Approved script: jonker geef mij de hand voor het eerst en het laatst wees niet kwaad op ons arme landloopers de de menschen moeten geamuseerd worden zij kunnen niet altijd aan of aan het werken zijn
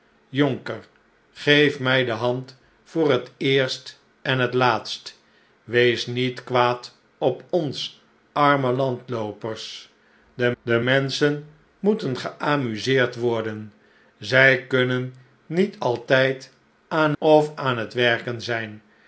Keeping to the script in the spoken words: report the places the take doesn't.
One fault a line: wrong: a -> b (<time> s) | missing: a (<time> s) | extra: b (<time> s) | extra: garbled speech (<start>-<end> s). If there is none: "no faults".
no faults